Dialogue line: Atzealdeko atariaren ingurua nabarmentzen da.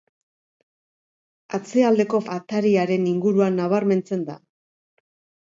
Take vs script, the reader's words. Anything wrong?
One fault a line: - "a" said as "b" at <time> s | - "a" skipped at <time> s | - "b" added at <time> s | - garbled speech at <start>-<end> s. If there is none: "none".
none